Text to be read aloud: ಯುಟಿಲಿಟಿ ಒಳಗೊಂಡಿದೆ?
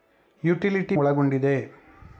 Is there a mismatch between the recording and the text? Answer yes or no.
no